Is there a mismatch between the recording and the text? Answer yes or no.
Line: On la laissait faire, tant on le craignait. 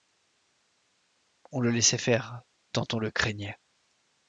yes